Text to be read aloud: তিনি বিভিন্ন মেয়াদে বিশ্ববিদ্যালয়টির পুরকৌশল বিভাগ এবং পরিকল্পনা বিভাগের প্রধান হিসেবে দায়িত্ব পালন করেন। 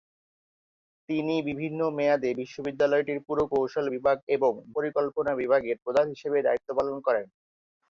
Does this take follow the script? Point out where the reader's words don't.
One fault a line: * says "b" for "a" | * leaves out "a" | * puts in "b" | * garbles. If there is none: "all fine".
all fine